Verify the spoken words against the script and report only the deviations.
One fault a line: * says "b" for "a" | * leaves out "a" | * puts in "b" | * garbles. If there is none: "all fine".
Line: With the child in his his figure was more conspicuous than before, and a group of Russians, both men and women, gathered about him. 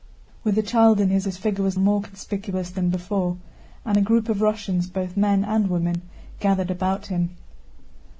all fine